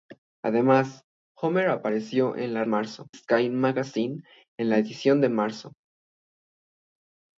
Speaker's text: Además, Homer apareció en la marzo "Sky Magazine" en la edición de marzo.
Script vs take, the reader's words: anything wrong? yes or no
no